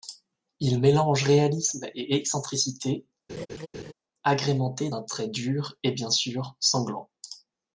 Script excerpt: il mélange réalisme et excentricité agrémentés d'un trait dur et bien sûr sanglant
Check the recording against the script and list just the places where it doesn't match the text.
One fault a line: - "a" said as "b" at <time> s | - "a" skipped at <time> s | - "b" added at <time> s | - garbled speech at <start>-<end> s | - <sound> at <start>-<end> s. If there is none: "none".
- laugh at 3.3-3.9 s